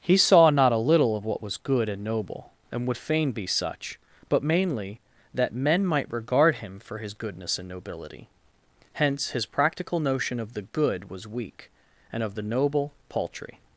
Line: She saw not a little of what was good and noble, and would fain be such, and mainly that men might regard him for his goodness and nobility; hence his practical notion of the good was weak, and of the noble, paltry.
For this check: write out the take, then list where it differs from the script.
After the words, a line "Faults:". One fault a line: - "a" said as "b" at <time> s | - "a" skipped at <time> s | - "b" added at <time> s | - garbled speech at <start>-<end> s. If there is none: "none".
He saw not a little of what was good and noble, and would fain be such, but mainly that men might regard him for his goodness and nobility; hence his practical notion of the good was weak, and of the noble, paltry.
Faults:
- "She" said as "He" at 0.0 s
- "and" said as "but" at 4.3 s